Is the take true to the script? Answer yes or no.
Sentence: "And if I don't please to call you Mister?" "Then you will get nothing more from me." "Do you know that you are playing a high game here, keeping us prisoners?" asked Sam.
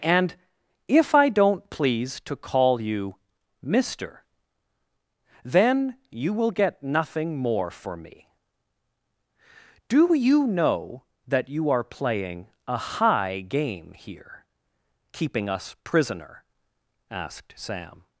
no